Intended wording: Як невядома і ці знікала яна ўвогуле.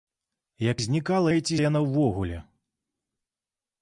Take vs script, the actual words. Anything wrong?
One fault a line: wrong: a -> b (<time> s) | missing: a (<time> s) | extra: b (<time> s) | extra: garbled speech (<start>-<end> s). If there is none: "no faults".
wrong: невядома -> знікала (0.8 s)
missing: знікала (1.6 s)